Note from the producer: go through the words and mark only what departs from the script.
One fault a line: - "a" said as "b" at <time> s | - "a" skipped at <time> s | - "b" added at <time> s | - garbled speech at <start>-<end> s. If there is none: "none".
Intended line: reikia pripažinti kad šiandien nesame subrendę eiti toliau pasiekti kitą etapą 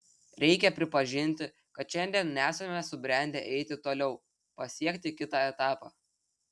none